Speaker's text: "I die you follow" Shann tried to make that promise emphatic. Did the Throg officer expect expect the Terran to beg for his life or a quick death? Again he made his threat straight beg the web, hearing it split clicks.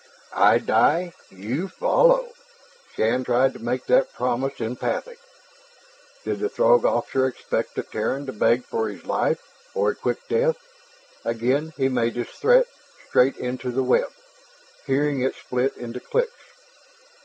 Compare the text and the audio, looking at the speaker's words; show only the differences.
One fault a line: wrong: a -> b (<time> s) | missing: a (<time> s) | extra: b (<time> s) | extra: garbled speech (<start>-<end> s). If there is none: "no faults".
missing: expect (7.8 s)
wrong: beg -> into (13.4 s)
extra: into (15.8 s)